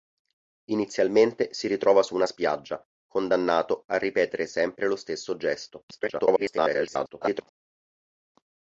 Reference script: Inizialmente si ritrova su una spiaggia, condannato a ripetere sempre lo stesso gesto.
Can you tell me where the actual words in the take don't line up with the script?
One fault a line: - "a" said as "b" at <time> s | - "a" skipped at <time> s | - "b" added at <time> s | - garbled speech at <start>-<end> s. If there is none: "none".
- garbled speech at 5.9-7.4 s